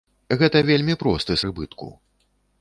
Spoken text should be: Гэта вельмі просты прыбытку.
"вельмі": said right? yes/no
yes